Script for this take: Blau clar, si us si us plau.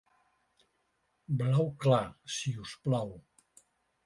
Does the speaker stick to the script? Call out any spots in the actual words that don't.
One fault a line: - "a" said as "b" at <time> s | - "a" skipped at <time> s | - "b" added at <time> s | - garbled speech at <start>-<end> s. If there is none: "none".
- "si us" skipped at 2.8 s